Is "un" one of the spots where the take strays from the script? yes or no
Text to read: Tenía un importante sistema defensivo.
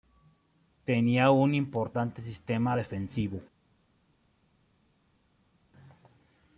no